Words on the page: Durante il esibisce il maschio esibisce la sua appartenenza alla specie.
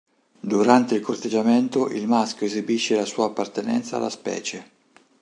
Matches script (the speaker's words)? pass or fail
fail